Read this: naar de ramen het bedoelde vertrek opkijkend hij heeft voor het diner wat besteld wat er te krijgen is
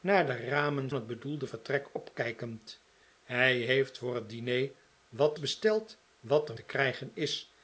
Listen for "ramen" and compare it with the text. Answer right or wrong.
right